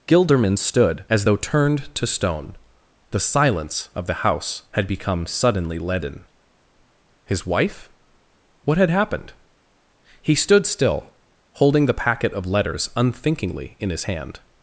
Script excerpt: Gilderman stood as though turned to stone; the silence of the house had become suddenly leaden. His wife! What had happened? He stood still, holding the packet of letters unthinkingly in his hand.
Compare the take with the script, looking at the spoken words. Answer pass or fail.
pass